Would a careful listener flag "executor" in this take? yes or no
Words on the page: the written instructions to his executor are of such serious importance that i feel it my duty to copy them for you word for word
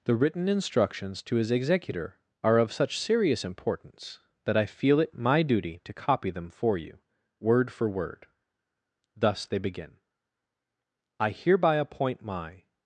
no